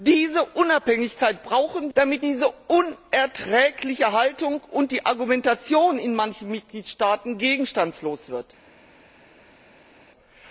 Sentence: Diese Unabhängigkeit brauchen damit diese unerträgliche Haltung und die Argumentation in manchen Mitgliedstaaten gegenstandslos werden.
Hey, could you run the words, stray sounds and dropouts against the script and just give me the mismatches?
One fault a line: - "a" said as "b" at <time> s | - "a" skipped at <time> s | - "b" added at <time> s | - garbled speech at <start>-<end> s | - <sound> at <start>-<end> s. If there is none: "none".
none